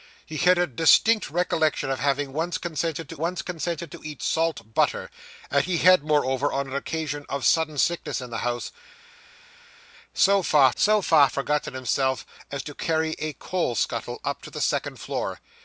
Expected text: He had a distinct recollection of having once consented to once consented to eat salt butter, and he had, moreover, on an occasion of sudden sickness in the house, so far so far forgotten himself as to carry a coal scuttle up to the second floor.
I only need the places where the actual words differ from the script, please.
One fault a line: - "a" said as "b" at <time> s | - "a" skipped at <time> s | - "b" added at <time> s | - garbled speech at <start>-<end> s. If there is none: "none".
none